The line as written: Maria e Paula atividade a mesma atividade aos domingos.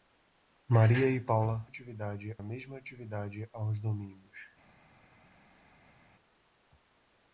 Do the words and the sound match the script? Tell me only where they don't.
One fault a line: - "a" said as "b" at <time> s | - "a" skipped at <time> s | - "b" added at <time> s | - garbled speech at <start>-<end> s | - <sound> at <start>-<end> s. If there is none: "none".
none